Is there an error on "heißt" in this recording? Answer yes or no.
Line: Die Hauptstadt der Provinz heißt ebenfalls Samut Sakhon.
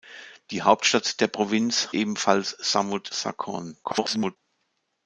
yes